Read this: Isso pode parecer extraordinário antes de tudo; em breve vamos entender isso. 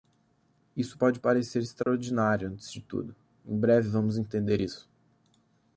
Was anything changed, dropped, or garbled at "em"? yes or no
no